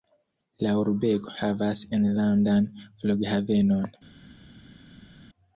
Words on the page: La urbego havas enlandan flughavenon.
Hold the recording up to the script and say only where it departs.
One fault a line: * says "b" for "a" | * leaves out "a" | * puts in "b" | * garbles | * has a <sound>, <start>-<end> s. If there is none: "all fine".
all fine